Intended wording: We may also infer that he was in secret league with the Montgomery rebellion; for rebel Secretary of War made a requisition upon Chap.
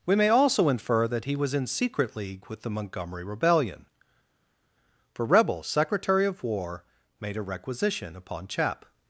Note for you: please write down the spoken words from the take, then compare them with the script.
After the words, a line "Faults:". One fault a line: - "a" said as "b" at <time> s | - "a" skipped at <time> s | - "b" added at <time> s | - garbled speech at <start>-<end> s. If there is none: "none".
We may also infer that he was in secret league with the Montgomery rebellion; for rebel Secretary of War made a requisition upon Chap.
Faults:
none